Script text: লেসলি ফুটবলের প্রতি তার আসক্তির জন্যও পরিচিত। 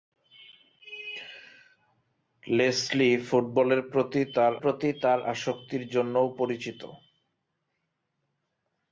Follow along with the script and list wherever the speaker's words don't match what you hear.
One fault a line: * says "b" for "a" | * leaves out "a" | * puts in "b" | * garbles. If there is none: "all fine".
* puts in "প্রতি তার"